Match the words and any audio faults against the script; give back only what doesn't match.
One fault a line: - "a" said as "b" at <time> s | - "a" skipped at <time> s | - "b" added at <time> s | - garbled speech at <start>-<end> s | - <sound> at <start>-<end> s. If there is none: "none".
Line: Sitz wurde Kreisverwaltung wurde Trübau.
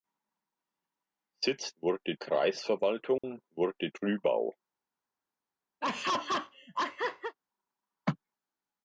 - dropout at 3.2-3.2 s
- laugh at 5.8-7.4 s